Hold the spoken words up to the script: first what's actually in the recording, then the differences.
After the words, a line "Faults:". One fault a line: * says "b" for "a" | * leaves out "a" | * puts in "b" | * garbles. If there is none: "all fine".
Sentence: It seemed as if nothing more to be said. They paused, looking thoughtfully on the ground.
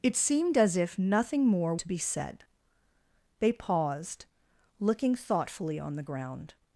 It seemed as if nothing more to be said. They paused, looking thoughtfully on the ground.
Faults:
all fine